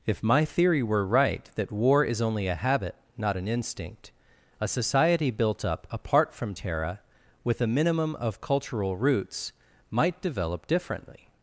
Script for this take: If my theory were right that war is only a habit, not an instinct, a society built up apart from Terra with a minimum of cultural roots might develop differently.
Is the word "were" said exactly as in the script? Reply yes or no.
yes